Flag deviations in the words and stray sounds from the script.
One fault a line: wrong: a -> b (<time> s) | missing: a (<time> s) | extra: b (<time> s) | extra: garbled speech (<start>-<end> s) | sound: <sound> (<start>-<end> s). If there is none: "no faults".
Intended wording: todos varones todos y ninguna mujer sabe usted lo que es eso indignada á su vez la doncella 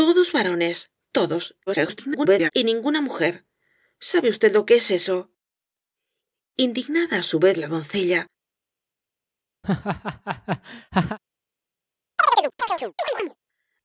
extra: garbled speech (1.7-2.5 s)
sound: laugh (9.6-11.2 s)
sound: chirp (12.2-13.4 s)